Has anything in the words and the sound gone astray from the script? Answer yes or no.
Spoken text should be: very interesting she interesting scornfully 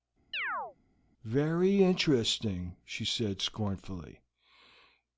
yes